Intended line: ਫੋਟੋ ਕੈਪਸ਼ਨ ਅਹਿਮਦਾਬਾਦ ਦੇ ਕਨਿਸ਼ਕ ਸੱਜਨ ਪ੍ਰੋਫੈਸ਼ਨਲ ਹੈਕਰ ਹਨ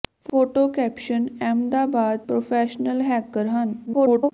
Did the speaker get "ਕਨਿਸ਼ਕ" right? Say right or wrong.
wrong